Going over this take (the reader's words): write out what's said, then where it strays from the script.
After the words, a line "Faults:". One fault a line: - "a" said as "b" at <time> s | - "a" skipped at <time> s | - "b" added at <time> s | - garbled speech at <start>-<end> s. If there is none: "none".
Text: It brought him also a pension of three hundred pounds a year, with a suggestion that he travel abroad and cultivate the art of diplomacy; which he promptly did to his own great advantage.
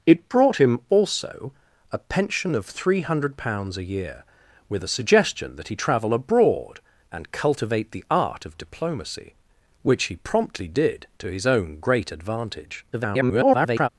It brought him also a pension of three hundred pounds a year, with a suggestion that he travel abroad and cultivate the art of diplomacy; which he promptly did to his own great advantage. [garbled]
Faults:
- garbled speech at 12.9-13.9 s